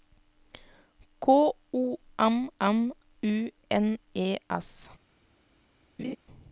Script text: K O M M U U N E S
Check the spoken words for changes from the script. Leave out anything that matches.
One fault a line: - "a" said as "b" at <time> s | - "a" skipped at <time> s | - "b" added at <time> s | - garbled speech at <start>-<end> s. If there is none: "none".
- "U" skipped at 3.5 s